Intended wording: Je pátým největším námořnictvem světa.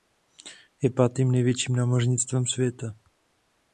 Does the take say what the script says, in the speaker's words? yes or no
yes